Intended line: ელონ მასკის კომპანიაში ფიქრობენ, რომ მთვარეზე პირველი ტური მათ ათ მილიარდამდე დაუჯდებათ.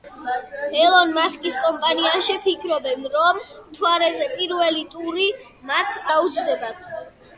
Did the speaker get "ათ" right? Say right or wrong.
wrong